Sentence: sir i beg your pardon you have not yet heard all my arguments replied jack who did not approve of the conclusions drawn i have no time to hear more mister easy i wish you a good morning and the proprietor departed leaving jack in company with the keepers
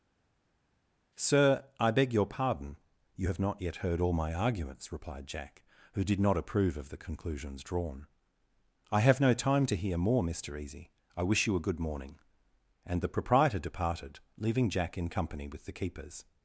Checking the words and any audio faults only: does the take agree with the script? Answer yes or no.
yes